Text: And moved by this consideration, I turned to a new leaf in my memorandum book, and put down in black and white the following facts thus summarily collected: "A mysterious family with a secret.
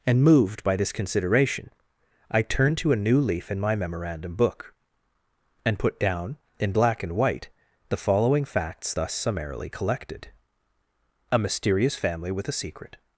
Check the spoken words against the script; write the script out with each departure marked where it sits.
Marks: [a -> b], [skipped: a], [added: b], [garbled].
And moved by this consideration, I turned to a new leaf in my memorandum book, and put down in black and white the following facts thus summarily collected: "A mysterious family with a secret.